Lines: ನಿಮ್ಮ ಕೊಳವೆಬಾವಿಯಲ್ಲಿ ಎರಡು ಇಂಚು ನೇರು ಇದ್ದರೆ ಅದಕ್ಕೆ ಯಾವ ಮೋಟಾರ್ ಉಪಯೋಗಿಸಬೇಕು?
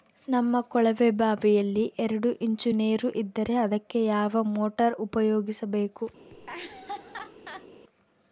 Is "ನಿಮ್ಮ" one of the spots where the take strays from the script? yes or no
yes